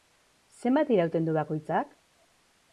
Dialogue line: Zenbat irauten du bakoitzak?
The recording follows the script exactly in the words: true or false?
true